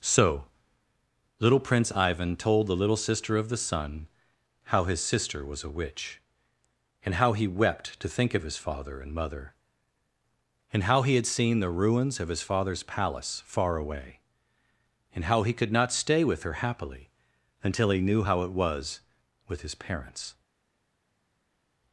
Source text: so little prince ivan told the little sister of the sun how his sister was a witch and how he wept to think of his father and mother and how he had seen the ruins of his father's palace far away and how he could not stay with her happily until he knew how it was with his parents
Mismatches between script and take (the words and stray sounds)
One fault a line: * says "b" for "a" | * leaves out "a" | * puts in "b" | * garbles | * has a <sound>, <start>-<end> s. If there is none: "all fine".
all fine